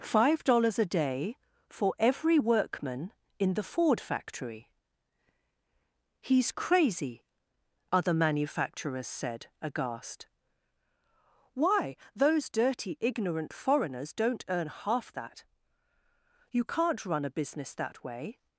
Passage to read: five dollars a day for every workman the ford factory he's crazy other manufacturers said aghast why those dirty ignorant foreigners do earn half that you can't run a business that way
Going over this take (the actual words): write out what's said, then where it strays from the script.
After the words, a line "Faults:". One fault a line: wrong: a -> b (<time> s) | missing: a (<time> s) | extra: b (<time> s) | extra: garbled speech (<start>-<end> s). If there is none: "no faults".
five dollars a day for every workman in the ford factory he's crazy other manufacturers said aghast why those dirty ignorant foreigners don't earn half that you can't run a business that way
Faults:
extra: in (3.4 s)
wrong: do -> don't (14.1 s)